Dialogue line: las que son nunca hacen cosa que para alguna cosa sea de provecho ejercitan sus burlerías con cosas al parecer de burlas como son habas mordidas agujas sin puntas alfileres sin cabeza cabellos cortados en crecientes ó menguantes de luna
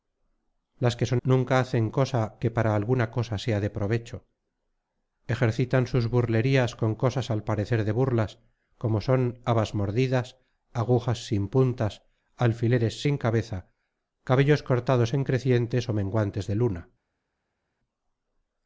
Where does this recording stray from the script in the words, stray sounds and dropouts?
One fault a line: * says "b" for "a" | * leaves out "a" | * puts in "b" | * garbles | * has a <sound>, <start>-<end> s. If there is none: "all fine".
all fine